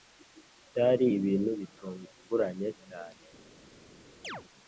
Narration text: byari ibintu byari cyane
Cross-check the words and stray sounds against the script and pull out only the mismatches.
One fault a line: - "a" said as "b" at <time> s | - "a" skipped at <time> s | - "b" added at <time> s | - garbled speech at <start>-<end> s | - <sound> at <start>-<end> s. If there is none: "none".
- "byari" said as "bitunguranye" at 1.6 s
- chirp at 4.2-4.4 s